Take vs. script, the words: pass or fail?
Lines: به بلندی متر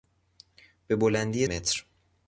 pass